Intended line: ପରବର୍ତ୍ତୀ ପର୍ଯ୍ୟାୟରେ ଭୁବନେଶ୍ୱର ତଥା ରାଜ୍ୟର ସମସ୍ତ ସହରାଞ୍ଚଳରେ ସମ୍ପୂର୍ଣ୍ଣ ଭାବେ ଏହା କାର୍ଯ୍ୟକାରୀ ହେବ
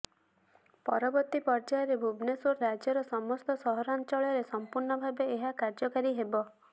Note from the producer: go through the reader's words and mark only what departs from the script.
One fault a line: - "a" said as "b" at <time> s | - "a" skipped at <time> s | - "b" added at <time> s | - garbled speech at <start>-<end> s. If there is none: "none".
- "ତଥା" skipped at 2.5 s